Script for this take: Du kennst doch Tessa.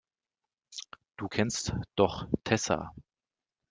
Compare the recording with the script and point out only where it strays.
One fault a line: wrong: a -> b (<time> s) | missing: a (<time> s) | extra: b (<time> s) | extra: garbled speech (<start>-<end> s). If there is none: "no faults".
no faults